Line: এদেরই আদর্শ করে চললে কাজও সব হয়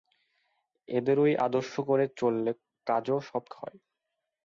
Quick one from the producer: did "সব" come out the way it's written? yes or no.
yes